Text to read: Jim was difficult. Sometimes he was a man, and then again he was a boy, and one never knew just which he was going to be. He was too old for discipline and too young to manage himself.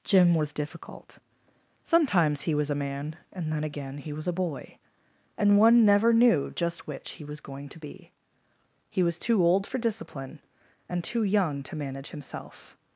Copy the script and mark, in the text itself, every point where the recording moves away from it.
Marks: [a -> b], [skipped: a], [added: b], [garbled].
Jim was difficult. Sometimes he was a man, and then again he was a boy, and one never knew just which he was going to be. He was too old for discipline and too young to manage himself.